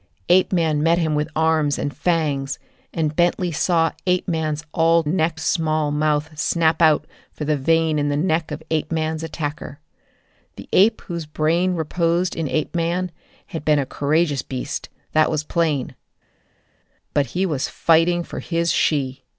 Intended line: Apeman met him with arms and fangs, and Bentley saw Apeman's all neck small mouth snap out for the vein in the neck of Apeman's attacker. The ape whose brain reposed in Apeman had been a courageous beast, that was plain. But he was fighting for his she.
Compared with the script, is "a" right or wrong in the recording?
right